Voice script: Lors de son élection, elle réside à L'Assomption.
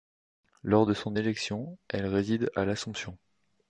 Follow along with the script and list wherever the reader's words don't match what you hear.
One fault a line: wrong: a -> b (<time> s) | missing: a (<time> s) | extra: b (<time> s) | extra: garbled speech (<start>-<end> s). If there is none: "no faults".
no faults